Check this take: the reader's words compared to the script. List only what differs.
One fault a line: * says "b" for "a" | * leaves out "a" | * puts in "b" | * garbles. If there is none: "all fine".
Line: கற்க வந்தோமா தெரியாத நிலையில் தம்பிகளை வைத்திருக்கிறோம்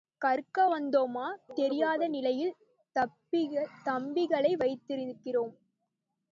all fine